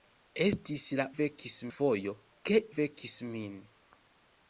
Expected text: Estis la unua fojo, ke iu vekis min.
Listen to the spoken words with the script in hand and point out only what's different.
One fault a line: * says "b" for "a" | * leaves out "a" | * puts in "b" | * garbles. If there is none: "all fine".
* says "vekis" for "unua"
* leaves out "iu"